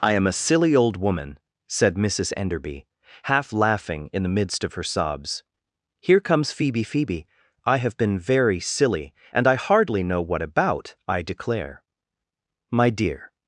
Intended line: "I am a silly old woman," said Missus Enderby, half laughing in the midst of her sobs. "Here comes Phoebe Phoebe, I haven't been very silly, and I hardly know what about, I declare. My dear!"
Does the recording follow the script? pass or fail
fail